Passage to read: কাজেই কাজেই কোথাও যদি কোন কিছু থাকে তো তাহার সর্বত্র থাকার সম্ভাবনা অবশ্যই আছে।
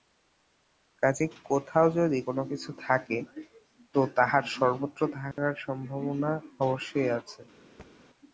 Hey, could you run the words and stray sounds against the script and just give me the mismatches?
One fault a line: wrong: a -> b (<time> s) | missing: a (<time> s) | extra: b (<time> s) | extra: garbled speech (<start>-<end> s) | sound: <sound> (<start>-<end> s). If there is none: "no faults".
missing: কাজেই (1.3 s)
sound: dropout (5.3-5.4 s)
sound: thud (7.8-7.9 s)